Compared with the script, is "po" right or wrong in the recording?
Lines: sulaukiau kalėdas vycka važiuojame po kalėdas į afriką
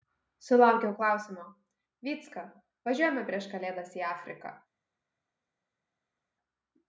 wrong